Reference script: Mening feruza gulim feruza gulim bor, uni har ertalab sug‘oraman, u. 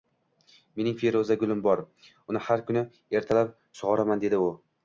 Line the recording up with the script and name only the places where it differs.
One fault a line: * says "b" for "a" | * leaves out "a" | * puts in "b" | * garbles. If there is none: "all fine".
* leaves out "feruza gulim"
* puts in "kuni"
* puts in "dedi"